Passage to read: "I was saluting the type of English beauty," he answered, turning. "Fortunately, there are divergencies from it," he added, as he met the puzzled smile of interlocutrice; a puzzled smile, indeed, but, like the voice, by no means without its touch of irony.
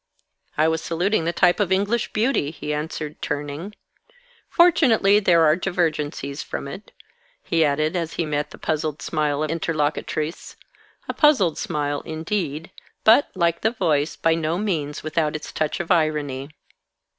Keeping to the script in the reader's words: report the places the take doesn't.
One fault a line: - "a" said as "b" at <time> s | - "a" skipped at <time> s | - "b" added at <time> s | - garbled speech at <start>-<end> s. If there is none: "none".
none